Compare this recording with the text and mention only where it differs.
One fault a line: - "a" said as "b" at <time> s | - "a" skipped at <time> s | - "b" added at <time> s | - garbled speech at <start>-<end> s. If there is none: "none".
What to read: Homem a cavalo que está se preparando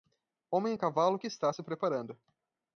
none